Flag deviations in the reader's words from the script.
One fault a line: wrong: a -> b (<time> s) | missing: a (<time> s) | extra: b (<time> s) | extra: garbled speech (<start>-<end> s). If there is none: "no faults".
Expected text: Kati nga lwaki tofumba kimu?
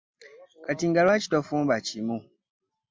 no faults